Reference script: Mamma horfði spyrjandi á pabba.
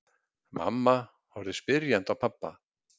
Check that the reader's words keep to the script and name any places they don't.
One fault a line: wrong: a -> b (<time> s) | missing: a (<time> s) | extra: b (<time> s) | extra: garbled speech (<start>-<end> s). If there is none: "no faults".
no faults